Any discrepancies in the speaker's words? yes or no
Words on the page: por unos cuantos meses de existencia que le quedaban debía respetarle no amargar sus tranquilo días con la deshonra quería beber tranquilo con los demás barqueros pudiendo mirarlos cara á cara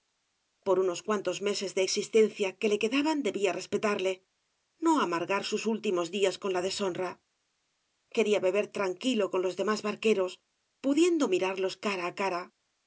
yes